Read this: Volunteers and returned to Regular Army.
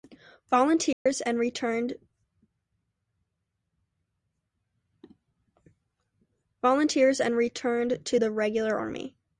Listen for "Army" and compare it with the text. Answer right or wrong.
right